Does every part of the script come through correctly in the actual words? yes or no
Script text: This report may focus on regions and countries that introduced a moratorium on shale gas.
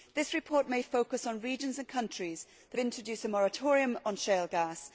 yes